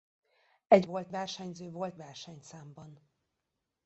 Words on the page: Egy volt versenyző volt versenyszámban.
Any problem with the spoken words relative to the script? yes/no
no